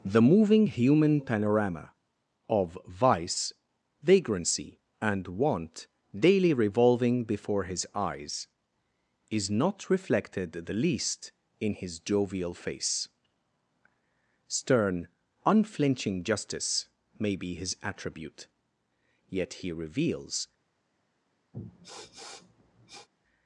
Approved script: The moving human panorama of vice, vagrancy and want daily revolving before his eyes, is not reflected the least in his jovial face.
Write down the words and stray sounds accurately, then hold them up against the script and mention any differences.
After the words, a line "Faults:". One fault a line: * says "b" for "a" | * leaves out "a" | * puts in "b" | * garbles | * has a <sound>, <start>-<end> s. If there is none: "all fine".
The moving human panorama of vice, vagrancy and want daily revolving before his eyes, is not reflected the least in his jovial face. Stern, unflinching justice may be his attribute, yet he reveals
Faults:
* puts in "Stern unflinching justice may be his attribute yet he reveals"
* has a sniff, 21.5-23.1 s